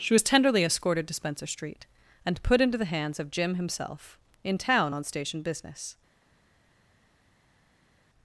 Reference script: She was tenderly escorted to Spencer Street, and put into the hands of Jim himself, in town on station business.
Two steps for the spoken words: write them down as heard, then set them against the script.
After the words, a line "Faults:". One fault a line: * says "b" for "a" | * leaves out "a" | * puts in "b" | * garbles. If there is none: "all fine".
She was tenderly escorted to Spencer Street, and put into the hands of Jim himself, in town on station business.
Faults:
all fine